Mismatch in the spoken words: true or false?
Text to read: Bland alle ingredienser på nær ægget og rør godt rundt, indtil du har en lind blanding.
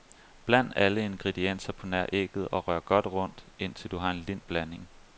false